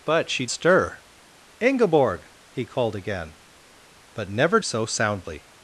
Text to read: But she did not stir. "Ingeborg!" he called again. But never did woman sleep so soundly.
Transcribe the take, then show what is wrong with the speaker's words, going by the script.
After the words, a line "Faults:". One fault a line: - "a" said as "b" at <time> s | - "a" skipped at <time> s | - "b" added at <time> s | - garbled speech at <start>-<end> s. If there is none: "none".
But she stir. "Ingeborg!" he called again. But never so soundly.
Faults:
- "did not" skipped at 0.5 s
- "did woman sleep" skipped at 4.6 s